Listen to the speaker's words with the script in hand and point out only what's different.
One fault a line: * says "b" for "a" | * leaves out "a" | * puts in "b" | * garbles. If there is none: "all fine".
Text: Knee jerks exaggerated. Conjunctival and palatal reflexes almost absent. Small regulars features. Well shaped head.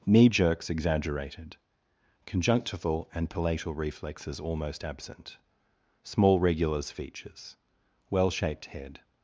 all fine